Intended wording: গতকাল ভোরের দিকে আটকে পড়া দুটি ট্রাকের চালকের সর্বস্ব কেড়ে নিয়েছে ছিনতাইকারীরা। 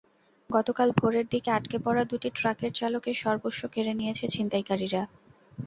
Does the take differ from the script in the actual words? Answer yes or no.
no